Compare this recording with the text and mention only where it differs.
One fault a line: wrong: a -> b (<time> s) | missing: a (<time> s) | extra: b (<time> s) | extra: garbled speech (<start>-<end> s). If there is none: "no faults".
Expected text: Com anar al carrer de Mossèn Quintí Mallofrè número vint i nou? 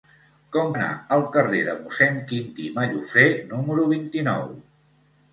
no faults